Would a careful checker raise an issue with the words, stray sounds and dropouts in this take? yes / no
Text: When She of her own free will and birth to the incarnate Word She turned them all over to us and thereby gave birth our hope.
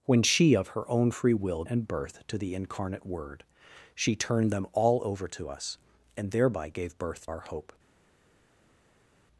no